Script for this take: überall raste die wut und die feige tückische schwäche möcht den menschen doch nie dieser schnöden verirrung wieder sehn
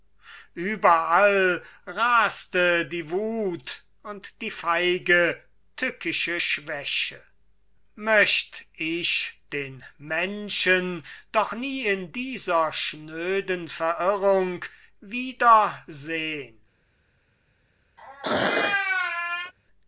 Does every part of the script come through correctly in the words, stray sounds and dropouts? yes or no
no